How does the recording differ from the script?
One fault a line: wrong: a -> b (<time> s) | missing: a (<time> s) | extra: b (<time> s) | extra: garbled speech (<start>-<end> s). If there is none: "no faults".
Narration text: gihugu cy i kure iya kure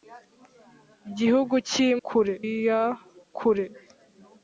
no faults